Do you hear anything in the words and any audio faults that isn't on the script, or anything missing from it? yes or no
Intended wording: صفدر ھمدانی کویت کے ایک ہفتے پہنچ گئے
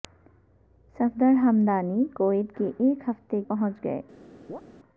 yes